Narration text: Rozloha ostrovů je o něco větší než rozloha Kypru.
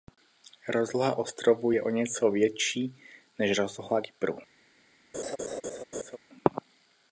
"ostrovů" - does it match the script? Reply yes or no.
yes